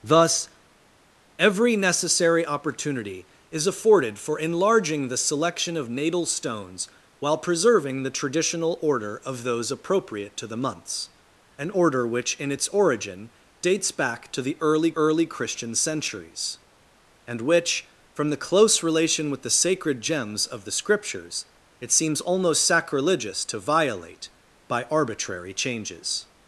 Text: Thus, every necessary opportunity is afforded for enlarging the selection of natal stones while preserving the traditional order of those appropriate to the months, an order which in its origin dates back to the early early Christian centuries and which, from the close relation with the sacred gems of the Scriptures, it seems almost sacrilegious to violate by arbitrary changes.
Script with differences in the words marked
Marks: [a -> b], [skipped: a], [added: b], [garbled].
Thus, every necessary opportunity is afforded for enlarging the selection of natal stones while preserving the traditional order of those appropriate to the months, an order which in its origin dates back to the early early Christian centuries and which, from the close relation with the sacred gems of the Scriptures, it seems almost sacrilegious to violate by arbitrary changes.